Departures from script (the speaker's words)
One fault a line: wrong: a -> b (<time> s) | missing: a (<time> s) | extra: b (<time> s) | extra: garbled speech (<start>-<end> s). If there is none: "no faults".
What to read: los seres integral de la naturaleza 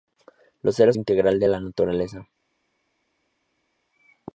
no faults